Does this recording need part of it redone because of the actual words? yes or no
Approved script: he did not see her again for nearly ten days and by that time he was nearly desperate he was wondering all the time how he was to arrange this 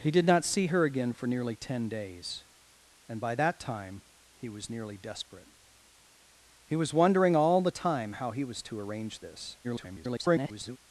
yes